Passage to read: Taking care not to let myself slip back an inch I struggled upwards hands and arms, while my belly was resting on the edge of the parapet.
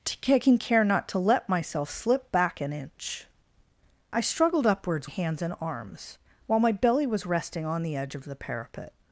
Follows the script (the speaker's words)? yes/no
yes